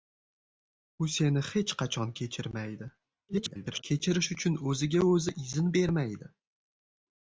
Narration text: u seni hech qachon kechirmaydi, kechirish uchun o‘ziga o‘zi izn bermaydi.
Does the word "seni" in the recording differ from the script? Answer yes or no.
no